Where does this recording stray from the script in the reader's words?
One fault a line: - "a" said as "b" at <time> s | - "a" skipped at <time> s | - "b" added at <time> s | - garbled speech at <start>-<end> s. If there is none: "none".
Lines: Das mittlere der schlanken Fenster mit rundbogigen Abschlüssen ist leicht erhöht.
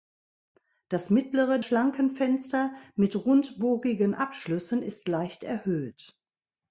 - "der" skipped at 1.6 s